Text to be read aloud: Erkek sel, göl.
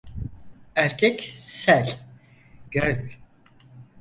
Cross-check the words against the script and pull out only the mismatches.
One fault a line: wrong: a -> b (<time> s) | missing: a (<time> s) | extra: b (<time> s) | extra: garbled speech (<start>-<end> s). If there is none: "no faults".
no faults